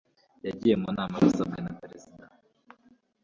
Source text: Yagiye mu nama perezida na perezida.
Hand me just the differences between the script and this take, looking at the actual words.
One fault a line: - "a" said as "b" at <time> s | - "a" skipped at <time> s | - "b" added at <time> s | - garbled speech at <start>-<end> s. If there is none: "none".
- "perezida" said as "abisabwe" at 1.2 s